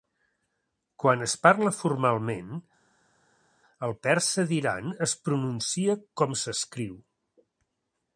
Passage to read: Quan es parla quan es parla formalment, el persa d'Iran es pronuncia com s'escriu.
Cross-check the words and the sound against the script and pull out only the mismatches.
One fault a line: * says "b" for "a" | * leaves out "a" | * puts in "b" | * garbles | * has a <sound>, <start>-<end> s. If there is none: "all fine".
* leaves out "quan es parla"